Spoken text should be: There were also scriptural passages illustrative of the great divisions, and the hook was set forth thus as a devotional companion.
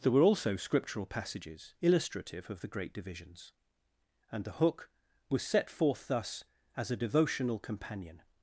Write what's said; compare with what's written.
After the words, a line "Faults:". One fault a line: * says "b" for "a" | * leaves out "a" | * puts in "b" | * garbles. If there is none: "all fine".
There were also scriptural passages illustrative of the great divisions, and the hook was set forth thus as a devotional companion.
Faults:
all fine